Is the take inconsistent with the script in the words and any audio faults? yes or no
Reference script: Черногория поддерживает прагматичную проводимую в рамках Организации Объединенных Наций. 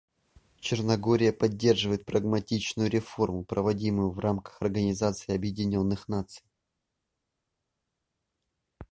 yes